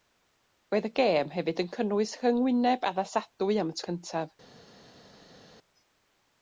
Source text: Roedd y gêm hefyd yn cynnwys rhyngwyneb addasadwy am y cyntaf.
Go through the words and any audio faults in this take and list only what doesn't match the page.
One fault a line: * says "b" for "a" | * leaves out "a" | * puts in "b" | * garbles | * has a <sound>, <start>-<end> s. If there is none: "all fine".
all fine